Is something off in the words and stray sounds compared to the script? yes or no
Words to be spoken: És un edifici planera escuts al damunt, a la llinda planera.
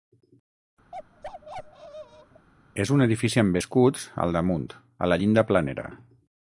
yes